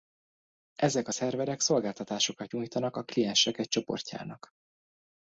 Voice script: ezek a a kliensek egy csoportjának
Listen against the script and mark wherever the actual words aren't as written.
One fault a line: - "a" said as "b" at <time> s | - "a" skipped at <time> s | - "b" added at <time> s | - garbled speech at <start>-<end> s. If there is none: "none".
- "szerverek szolgáltatásokat nyújtanak" added at 1.1 s